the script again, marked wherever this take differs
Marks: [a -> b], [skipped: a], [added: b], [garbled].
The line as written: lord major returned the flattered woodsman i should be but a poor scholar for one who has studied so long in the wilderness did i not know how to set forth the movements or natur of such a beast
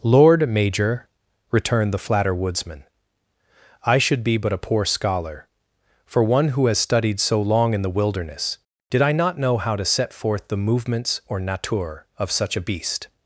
lord major returned the [flattered -> flatter] woodsman i should be but a poor scholar for one who has studied so long in the wilderness did i not know how to set forth the movements or natur of such a beast